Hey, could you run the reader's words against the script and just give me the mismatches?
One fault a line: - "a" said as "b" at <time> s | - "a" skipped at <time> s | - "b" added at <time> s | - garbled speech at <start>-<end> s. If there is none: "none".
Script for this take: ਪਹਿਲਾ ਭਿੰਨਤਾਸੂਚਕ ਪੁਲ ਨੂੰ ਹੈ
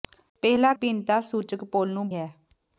none